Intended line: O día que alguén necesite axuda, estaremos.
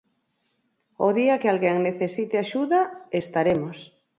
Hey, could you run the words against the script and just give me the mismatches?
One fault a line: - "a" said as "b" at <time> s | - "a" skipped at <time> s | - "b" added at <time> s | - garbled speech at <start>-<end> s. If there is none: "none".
none